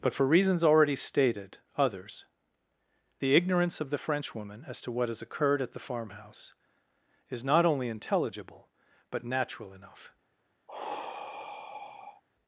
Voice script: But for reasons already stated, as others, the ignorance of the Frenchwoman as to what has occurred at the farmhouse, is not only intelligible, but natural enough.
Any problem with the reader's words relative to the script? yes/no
yes